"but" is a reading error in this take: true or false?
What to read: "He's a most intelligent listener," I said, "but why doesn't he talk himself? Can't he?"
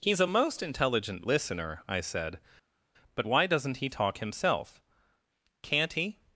false